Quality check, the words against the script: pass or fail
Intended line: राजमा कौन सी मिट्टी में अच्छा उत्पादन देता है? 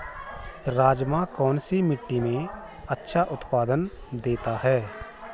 pass